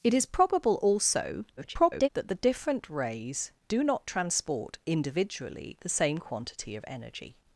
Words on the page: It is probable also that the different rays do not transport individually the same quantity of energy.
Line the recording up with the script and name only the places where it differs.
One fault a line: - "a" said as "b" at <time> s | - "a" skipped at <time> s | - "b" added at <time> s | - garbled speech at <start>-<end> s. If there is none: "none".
- garbled speech at 1.6-2.1 s